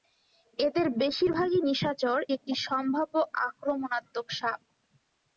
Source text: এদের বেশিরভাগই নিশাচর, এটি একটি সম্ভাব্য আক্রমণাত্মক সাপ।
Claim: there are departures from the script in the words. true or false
true